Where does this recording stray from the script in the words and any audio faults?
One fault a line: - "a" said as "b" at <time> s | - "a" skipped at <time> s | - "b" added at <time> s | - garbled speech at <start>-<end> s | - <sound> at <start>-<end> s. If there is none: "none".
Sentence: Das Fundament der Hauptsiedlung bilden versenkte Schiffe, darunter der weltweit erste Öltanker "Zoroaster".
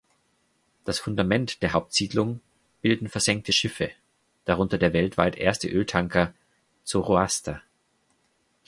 none